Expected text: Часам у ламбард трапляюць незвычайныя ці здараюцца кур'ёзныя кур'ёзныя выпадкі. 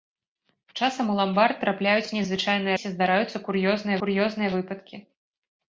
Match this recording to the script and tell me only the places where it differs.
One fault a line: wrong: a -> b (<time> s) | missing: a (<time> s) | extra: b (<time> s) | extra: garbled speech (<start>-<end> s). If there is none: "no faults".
no faults